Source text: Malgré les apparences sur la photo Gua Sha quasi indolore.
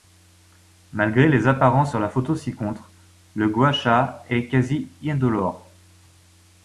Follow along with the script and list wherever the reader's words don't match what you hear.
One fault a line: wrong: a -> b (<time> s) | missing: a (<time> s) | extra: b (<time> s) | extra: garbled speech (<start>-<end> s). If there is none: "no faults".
extra: ci contre le (2.4 s)
extra: est (4.3 s)